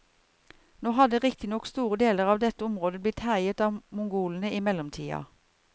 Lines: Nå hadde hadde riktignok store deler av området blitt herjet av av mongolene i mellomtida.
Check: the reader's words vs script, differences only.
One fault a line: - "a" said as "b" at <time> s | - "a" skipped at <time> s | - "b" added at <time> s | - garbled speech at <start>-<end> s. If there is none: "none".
- "hadde" skipped at 1.2 s
- "dette" added at 2.5 s
- "av" skipped at 3.8 s